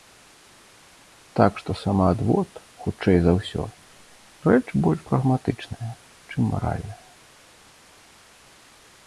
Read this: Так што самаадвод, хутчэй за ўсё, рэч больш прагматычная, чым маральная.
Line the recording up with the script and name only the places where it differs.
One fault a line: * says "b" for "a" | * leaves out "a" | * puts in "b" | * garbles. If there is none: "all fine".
all fine